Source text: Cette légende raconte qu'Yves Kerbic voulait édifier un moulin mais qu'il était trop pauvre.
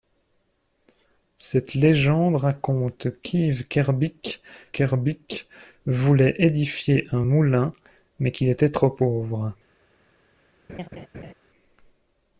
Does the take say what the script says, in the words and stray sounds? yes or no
no